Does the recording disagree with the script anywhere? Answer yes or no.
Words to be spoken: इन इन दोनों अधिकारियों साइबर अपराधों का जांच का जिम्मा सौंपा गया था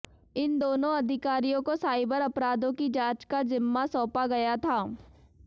yes